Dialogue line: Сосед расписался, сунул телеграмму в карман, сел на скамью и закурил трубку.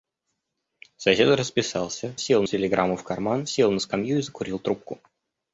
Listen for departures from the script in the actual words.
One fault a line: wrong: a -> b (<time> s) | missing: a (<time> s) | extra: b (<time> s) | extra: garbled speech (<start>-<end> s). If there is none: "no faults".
wrong: сунул -> сел (2.2 s)